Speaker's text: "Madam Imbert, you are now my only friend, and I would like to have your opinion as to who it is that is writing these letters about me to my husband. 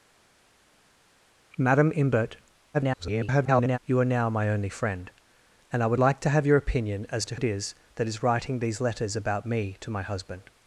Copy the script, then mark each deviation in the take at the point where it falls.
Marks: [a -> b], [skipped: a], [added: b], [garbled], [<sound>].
"Madam Imbert, [garbled] you are now my only friend, and I would like to have your opinion as to [skipped: who] it is that is writing these letters about me to my husband.